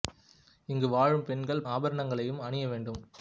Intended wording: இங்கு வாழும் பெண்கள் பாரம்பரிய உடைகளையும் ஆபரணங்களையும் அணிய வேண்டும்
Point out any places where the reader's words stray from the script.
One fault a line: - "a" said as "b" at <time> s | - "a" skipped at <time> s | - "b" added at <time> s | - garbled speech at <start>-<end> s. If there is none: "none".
- "பாரம்பரிய உடைகளையும்" skipped at 1.6 s